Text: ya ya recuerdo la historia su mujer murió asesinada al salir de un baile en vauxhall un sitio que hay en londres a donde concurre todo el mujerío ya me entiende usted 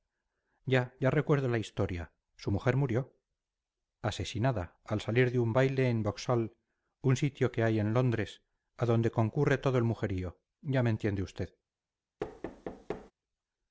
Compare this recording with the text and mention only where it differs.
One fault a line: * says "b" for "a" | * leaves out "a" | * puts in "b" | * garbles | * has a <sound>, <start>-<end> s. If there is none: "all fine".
* has a thud, 12.2-13.1 s